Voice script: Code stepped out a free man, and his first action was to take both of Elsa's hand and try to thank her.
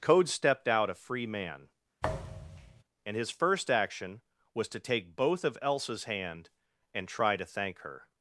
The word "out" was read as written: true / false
true